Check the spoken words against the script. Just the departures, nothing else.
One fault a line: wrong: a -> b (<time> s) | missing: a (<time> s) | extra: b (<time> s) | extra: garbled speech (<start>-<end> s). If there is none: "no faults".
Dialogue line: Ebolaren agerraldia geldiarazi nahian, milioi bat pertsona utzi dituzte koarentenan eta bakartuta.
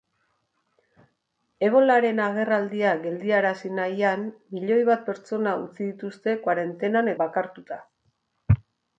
missing: eta (7.1 s)